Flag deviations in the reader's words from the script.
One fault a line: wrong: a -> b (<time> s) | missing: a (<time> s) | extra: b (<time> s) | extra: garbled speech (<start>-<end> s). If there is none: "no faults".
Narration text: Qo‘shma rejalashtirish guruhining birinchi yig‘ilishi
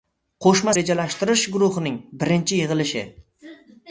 no faults